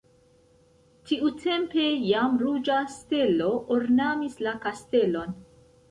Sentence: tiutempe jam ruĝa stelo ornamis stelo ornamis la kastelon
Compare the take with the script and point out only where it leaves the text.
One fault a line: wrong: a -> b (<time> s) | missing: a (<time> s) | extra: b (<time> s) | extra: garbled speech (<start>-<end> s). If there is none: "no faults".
missing: stelo ornamis (4.4 s)